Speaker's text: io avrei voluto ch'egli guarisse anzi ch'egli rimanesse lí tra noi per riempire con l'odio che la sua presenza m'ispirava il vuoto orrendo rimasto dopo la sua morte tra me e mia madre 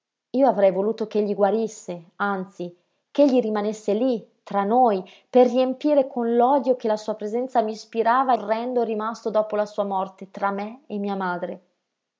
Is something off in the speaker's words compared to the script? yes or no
yes